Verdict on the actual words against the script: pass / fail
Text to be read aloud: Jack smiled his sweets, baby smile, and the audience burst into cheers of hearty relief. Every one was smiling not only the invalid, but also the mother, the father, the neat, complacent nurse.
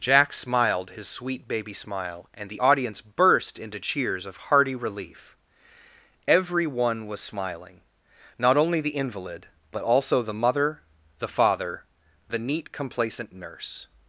fail